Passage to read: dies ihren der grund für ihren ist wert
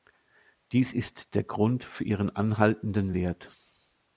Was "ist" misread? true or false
true